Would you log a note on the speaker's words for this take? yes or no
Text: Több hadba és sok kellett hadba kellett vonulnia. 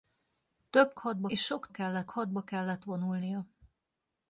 no